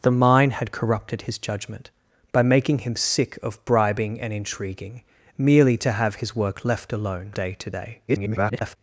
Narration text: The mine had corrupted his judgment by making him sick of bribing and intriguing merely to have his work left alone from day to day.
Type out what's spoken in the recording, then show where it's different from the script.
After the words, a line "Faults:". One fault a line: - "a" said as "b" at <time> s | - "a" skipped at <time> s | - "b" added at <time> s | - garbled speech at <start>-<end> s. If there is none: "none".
The mine had corrupted his judgment by making him sick of bribing and intriguing merely to have his work left alone day to day. [garbled]
Faults:
- "from" skipped at 7.3 s
- garbled speech at 8.1-8.8 s